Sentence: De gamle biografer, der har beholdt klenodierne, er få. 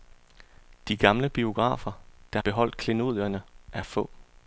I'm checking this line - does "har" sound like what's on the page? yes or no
no